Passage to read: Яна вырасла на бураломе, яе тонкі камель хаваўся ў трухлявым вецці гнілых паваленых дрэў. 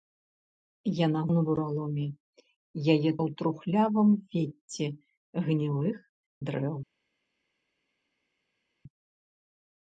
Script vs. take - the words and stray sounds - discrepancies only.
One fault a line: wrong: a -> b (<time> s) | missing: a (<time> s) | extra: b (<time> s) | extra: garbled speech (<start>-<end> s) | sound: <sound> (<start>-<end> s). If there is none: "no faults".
missing: вырасла (1.2 s)
missing: тонкі камель хаваўся (3.1 s)
missing: паваленых (6.0 s)